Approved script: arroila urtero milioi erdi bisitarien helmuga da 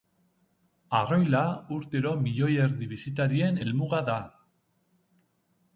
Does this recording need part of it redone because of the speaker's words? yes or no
no